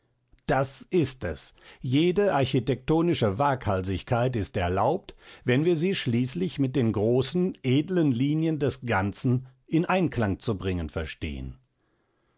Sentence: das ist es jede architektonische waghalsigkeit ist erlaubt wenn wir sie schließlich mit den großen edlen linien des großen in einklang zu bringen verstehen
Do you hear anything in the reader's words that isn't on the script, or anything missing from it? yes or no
yes